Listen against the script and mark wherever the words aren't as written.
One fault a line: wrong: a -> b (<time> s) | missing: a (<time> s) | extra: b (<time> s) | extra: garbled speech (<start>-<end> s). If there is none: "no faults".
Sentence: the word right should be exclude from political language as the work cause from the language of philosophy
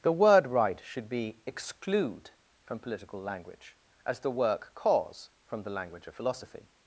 no faults